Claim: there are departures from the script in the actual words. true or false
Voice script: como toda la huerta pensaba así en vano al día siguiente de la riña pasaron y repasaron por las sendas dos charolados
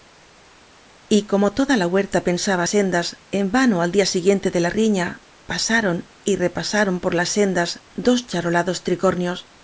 true